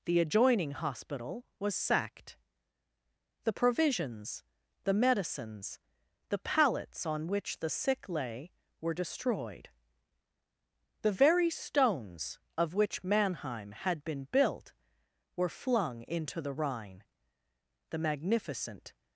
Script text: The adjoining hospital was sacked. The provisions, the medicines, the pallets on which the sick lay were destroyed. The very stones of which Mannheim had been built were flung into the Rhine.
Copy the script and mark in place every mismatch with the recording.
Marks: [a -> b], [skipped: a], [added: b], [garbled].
The adjoining hospital was sacked. The provisions, the medicines, the pallets on which the sick lay were destroyed. The very stones of which Mannheim had been built were flung into the Rhine. [added: The magnificent]